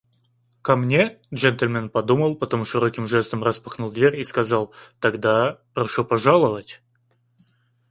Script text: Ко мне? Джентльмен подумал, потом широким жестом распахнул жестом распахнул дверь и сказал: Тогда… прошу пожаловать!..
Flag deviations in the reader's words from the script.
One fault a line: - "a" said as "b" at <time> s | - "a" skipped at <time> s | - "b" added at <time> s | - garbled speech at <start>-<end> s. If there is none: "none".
- "жестом распахнул" skipped at 3.9 s